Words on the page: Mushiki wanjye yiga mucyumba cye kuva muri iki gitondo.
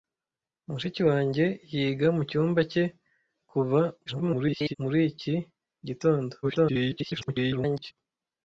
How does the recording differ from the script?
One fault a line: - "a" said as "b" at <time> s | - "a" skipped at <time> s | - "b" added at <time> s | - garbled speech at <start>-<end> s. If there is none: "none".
- garbled speech at 4.1-4.8 s
- garbled speech at 6.4-7.9 s